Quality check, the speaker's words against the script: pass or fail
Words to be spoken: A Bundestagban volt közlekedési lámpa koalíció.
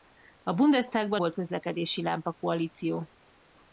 pass